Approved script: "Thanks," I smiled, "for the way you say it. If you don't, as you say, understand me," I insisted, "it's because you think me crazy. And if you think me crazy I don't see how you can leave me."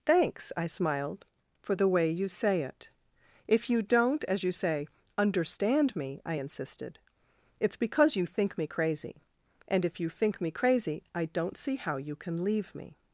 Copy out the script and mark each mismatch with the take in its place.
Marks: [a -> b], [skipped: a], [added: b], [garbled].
"Thanks," I smiled, "for the way you say it. If you don't, as you say, understand me," I insisted, "it's because you think me crazy. And if you think me crazy I don't see how you can leave me."